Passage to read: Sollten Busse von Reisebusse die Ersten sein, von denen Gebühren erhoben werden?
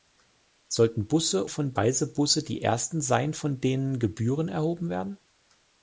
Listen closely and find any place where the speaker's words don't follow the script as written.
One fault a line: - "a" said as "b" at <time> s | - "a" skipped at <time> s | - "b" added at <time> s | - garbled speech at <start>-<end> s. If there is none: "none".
none